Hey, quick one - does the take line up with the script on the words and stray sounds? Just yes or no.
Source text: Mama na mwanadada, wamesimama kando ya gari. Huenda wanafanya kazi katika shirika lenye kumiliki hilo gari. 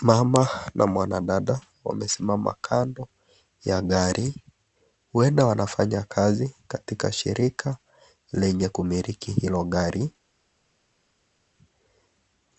yes